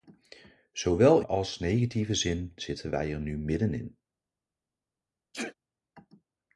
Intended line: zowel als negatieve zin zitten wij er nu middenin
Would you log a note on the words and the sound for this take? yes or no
yes